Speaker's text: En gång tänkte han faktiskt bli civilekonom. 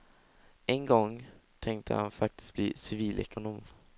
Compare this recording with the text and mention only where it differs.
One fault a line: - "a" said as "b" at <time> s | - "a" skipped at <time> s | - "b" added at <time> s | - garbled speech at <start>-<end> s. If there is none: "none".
none